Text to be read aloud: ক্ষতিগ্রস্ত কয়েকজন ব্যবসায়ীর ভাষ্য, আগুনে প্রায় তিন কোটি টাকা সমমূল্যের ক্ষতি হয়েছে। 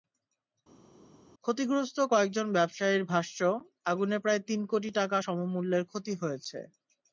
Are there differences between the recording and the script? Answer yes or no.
no